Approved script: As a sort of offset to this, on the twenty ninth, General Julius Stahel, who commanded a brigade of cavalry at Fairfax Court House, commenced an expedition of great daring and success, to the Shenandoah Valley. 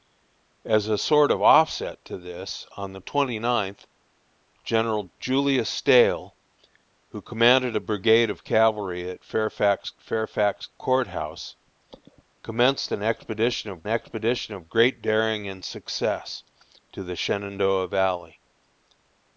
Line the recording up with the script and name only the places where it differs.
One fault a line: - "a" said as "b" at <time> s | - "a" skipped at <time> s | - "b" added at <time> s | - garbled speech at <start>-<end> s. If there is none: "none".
- "Fairfax" added at 10.0 s
- "expedition of" added at 13.9 s